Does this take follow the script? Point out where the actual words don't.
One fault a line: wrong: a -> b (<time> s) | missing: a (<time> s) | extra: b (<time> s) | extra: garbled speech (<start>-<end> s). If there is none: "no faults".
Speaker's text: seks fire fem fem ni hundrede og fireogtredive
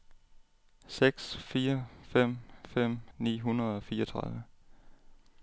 no faults